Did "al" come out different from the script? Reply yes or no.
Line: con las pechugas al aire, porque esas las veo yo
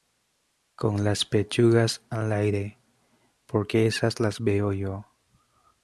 no